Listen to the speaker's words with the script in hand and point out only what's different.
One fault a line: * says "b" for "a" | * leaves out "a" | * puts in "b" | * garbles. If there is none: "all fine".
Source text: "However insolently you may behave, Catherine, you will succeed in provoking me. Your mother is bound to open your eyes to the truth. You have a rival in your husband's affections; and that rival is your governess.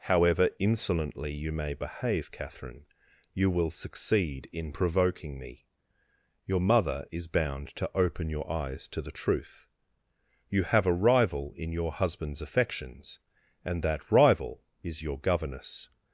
all fine